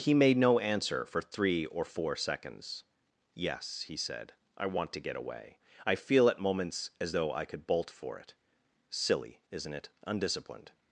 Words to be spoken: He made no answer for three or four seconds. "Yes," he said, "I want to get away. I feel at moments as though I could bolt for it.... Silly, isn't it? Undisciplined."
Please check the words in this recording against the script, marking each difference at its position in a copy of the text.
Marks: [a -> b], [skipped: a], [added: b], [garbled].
He made no answer for three or four seconds. "Yes," he said, "I want to get away. I feel at moments as though I could bolt for it.... Silly, isn't it? Undisciplined."